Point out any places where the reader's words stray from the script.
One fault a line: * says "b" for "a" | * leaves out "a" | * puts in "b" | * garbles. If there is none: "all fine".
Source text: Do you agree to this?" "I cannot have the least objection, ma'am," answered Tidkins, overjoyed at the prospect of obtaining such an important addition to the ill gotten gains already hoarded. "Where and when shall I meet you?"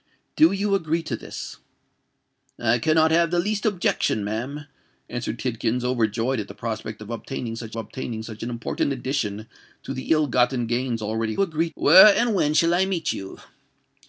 * puts in "obtaining such"
* says "agree" for "hoarded"